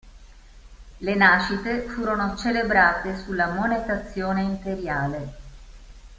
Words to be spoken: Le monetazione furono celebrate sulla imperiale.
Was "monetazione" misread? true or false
true